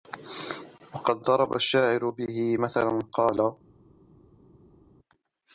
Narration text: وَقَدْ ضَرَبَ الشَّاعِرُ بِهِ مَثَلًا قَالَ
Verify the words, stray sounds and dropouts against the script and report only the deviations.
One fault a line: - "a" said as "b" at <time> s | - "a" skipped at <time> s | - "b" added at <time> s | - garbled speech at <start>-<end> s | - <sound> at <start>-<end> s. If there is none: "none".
none